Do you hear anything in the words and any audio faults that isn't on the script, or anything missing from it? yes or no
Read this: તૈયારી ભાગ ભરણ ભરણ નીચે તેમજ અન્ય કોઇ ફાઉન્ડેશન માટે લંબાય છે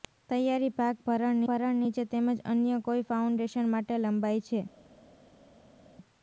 no